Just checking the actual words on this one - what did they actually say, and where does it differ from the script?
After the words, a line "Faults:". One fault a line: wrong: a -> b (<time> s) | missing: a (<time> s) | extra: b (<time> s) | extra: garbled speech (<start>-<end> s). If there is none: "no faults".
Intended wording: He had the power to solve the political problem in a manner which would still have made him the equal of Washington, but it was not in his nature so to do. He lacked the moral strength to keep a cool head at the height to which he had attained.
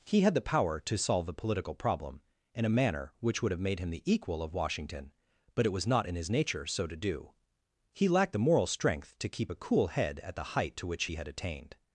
He had the power to solve the political problem in a manner which would have made him the equal of Washington, but it was not in his nature so to do. He lacked the moral strength to keep a cool head at the height to which he had attained.
Faults:
missing: still (3.5 s)